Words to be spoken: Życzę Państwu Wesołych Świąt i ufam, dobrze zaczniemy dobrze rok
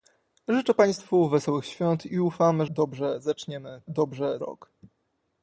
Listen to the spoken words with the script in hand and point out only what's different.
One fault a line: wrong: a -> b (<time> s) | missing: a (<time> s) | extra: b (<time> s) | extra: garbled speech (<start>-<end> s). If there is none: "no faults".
no faults